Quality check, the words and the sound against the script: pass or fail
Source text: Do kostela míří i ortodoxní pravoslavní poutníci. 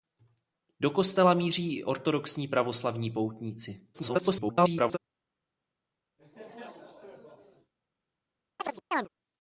fail